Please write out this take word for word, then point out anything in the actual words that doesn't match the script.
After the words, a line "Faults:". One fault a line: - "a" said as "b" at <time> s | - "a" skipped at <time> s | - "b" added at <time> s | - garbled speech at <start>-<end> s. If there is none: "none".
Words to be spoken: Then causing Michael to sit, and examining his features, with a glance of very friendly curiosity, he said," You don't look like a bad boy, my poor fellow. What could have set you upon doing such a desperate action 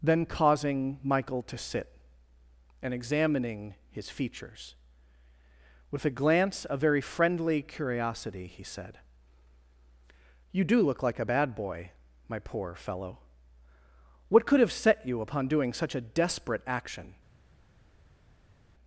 Then causing Michael to sit, and examining his features, with a glance of very friendly curiosity, he said," You do look like a bad boy, my poor fellow. What could have set you upon doing such a desperate action
Faults:
- "don't" said as "do" at 10.6 s